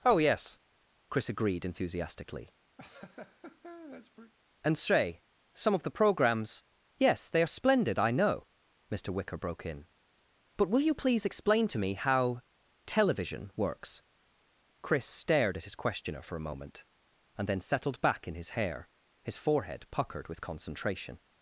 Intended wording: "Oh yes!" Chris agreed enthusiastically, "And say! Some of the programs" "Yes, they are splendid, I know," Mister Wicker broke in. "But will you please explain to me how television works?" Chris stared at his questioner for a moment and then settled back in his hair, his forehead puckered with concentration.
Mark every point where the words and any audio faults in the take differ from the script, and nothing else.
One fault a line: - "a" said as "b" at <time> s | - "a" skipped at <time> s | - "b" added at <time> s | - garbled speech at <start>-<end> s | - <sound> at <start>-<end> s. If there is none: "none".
- laugh at 2.8-4.3 s